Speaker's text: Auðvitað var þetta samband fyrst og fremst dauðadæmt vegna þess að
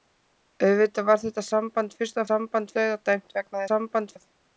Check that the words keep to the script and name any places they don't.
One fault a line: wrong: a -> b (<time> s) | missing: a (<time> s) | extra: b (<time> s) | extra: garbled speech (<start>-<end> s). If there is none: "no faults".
wrong: fremst -> samband (2.3 s)
wrong: þess -> samband (3.7 s)